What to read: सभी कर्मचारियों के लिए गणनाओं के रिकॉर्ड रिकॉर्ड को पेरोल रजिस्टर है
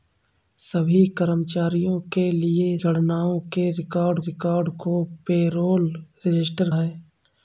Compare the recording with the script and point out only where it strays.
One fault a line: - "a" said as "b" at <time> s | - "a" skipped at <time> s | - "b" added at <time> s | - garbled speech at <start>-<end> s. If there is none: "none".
none